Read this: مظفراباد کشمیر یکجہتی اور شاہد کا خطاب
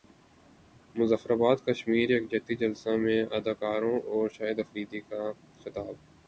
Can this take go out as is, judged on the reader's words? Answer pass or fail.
fail